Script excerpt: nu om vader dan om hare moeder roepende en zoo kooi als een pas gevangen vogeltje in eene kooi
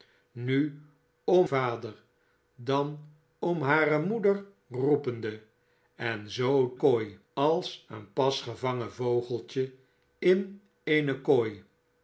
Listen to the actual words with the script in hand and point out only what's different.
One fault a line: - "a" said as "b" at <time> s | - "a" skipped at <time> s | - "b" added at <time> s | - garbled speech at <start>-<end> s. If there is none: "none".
none